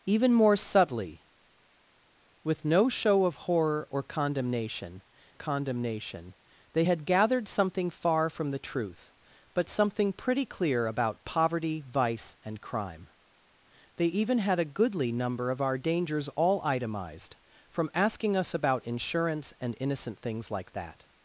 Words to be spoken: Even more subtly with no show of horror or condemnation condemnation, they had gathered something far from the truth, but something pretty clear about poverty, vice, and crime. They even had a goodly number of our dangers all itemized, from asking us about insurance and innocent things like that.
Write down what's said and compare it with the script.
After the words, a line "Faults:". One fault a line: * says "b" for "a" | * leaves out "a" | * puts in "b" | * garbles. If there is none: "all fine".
Even more subtly with no show of horror or condemnation condemnation, they had gathered something far from the truth, but something pretty clear about poverty, vice, and crime. They even had a goodly number of our dangers all itemized, from asking us about insurance and innocent things like that.
Faults:
all fine